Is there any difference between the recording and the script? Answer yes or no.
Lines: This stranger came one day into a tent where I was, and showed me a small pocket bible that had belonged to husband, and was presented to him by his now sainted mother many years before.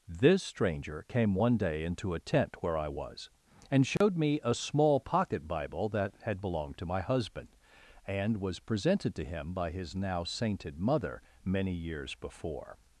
yes